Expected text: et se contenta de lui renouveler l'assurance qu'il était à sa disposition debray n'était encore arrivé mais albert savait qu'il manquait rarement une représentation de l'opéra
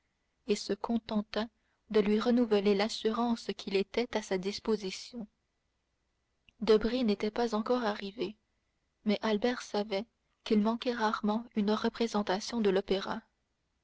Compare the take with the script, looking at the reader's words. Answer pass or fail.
fail